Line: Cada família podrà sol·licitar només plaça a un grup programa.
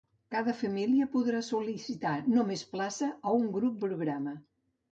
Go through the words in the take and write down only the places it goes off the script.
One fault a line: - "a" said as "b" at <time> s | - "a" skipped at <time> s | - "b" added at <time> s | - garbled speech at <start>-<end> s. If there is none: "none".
none